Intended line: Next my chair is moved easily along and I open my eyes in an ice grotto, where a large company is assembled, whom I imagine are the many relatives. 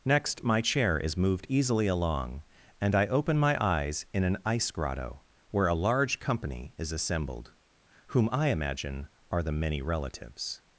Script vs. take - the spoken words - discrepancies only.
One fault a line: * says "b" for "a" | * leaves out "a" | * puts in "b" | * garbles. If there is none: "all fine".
all fine